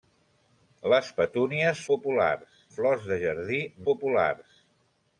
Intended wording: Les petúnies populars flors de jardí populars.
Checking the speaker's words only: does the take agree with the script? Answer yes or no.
yes